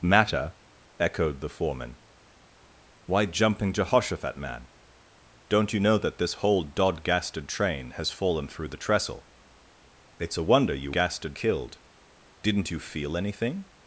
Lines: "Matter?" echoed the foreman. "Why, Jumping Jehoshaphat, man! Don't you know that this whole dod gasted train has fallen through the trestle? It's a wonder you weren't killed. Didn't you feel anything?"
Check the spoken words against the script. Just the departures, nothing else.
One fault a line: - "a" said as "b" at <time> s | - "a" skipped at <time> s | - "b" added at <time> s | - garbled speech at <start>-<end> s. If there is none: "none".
- "weren't" said as "gasted" at 10.9 s